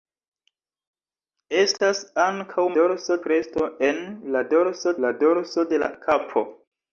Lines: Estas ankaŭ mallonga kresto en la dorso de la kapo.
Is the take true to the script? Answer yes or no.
no